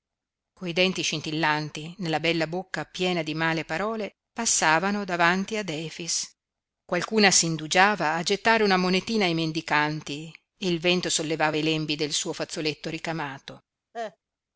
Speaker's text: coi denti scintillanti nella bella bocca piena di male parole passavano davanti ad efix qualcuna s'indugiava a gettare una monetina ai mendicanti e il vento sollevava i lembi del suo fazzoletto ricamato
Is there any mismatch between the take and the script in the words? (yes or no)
no